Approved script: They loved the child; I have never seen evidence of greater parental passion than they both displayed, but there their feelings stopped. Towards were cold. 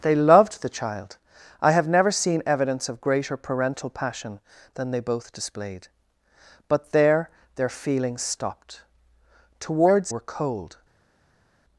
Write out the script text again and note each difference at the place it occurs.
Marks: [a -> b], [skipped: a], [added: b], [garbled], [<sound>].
They loved the child; I have never seen evidence of greater parental passion than they both displayed, but there their feelings stopped. Towards were cold.